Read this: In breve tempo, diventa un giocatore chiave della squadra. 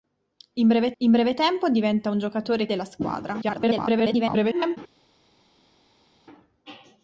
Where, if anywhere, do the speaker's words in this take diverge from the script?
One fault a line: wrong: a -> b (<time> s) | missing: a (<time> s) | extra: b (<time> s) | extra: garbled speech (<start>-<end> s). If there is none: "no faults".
extra: in breve (1.0 s)
missing: chiave (2.7 s)
extra: garbled speech (3.4-4.8 s)